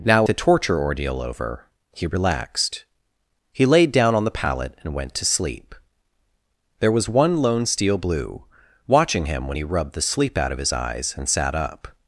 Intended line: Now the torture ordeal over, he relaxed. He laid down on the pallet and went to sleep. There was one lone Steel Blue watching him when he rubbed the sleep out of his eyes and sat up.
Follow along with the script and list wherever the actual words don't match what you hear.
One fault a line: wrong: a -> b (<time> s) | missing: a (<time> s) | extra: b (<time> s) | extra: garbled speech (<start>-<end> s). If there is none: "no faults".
no faults